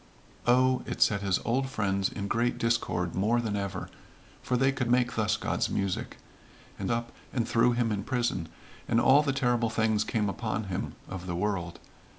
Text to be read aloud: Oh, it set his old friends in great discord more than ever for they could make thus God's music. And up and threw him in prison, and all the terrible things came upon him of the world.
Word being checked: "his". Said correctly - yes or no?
yes